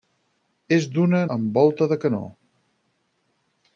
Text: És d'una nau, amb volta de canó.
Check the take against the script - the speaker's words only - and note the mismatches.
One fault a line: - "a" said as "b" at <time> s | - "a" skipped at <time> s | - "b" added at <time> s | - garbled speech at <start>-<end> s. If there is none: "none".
- "nau" skipped at 1.2 s